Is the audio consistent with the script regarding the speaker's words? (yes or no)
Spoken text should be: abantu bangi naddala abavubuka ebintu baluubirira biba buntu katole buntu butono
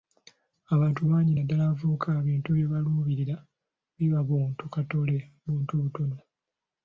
no